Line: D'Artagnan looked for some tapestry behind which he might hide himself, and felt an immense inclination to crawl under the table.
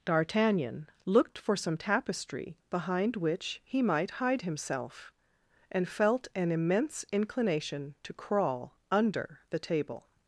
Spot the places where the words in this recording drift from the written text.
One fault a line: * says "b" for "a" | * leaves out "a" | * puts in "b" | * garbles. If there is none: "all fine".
all fine